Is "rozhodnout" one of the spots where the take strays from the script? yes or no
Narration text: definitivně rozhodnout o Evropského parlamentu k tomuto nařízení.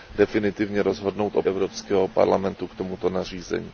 no